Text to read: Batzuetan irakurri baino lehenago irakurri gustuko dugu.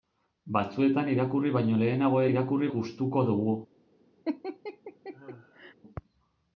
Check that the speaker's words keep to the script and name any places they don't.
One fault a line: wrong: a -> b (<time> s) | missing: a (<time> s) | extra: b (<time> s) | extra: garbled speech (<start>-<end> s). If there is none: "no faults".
no faults